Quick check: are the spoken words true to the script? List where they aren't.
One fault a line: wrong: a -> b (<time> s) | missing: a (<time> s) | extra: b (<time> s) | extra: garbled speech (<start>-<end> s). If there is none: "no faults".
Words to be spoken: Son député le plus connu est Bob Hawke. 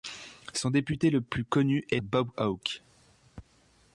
no faults